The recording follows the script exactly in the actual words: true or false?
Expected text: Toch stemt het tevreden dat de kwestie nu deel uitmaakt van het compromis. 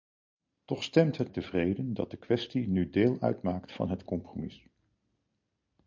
true